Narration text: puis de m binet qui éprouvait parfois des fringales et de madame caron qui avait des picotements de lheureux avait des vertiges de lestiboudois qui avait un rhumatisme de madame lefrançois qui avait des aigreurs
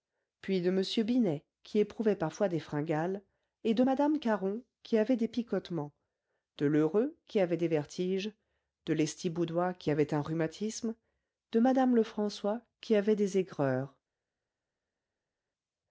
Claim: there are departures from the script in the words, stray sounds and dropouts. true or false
true